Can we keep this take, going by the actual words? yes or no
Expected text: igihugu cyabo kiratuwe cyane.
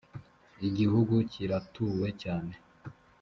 no